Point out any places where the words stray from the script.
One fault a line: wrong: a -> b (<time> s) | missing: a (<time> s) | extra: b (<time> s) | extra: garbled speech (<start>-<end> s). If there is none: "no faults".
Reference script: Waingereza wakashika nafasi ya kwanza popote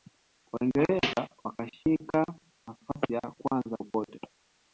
no faults